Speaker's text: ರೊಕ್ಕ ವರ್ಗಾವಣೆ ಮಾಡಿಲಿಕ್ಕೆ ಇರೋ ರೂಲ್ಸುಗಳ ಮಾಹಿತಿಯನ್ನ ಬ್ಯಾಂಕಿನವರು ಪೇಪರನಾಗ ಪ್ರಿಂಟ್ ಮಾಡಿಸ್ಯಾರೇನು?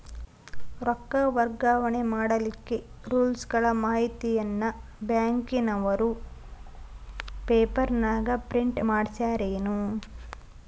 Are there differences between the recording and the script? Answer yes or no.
yes